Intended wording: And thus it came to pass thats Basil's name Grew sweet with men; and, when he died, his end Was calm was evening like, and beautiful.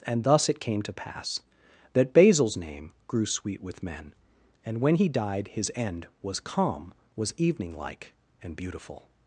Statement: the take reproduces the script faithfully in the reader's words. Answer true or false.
false